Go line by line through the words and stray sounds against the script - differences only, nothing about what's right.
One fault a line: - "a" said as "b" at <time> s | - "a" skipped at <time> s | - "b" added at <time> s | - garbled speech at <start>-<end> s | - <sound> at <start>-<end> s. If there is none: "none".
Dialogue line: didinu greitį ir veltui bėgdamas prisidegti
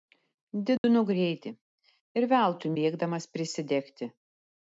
- dropout at 0.8-0.8 s